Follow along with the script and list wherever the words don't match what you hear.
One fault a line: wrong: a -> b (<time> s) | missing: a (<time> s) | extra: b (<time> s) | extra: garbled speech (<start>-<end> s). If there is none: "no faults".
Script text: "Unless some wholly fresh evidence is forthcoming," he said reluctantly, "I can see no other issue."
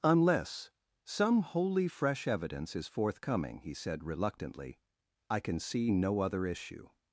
no faults